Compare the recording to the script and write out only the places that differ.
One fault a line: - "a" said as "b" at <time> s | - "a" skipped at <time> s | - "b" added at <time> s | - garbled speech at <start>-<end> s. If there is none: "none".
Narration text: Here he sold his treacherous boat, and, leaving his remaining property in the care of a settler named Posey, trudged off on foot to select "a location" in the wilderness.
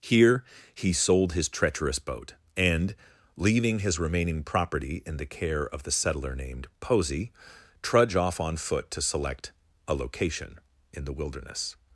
- "a" said as "the" at 5.8 s
- "trudged" said as "trudge" at 7.8 s